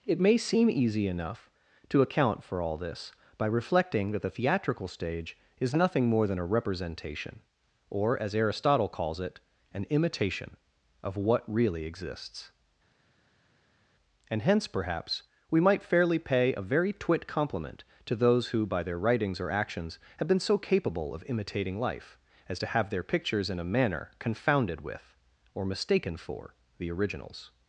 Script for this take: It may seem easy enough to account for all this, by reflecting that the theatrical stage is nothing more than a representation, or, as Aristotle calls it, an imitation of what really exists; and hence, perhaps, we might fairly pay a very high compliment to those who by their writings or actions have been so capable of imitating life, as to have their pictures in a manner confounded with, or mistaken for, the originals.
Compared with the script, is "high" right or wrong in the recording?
wrong